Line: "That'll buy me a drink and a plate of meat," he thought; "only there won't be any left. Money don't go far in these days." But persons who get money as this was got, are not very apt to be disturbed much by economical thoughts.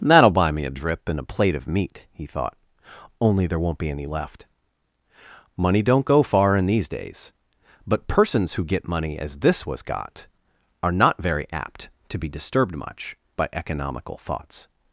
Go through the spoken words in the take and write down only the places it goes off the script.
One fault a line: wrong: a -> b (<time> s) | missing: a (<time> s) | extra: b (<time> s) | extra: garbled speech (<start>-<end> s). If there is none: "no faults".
wrong: drink -> drip (0.7 s)